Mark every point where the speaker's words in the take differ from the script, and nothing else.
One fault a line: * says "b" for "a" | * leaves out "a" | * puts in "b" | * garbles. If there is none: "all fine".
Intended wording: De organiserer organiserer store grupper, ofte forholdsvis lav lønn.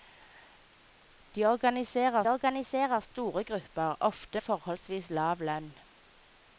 all fine